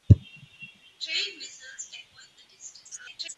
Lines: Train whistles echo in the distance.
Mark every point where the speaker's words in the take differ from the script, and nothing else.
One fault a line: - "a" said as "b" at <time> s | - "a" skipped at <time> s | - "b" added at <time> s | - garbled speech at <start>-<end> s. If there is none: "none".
- garbled speech at 2.8-3.4 s